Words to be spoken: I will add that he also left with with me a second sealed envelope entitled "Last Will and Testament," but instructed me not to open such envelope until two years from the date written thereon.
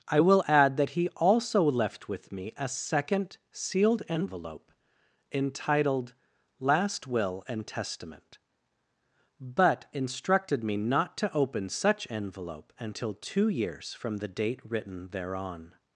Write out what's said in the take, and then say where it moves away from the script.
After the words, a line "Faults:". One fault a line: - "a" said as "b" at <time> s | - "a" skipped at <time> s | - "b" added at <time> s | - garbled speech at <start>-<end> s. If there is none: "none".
I will add that he also left with me a second sealed envelope entitled "Last Will and Testament," but instructed me not to open such envelope until two years from the date written thereon.
Faults:
- "with" skipped at 2.3 s